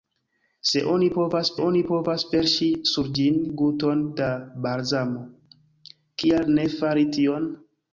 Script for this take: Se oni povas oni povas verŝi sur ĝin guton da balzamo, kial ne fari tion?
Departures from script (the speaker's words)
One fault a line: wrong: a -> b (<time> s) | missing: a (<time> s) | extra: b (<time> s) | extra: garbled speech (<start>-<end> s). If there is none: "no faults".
no faults